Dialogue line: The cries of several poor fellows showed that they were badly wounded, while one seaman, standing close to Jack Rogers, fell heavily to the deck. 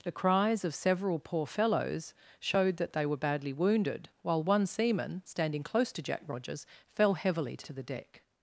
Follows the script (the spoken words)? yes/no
no